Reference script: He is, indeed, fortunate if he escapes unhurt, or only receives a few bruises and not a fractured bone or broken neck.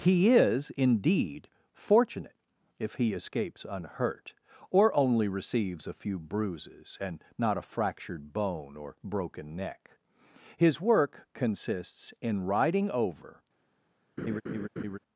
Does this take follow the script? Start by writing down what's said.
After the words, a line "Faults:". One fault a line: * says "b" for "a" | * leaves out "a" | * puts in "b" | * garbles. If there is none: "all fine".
He is, indeed, fortunate if he escapes unhurt, or only receives a few bruises and not a fractured bone or broken neck. His work consists in riding over
Faults:
* puts in "His work consists in riding over"